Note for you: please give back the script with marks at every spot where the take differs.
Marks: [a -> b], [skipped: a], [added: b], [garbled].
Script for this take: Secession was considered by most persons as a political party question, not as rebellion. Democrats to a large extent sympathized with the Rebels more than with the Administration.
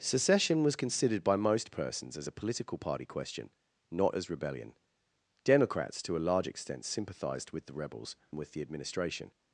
Secession was considered by most persons as a political party question, not as rebellion. Democrats to a large extent sympathized with the Rebels [skipped: more than] with the Administration.